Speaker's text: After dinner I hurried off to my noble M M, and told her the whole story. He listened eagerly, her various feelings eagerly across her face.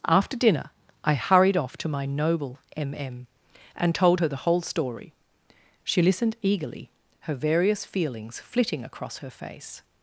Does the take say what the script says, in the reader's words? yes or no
no